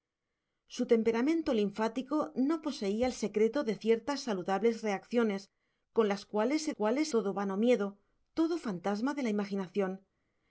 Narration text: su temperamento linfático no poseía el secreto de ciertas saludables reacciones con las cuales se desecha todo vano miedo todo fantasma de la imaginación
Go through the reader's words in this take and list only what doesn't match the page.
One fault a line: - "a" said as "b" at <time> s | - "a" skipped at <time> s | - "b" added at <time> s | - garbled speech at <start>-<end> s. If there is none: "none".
- "desecha" said as "cuales" at 6.7 s